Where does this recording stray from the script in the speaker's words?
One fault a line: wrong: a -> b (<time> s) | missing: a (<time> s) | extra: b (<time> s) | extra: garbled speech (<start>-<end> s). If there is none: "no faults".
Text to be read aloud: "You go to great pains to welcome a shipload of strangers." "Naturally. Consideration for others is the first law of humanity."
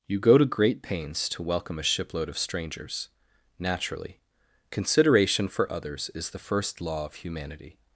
no faults